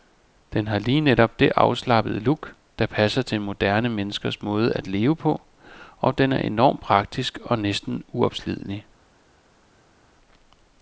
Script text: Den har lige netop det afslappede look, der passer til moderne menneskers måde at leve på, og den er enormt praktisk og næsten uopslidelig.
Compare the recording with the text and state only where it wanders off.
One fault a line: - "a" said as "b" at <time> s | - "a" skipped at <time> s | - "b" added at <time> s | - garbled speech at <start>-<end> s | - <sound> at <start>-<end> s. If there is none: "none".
none